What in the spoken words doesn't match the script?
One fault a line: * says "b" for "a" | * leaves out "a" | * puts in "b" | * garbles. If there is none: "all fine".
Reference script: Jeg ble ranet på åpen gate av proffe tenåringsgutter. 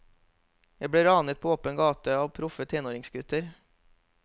all fine